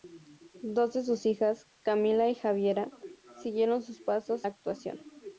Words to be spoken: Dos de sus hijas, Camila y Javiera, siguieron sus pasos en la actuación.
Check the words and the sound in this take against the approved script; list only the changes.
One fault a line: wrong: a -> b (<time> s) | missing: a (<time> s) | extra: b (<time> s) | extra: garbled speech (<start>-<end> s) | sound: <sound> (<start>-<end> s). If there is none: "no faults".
missing: en (4.5 s)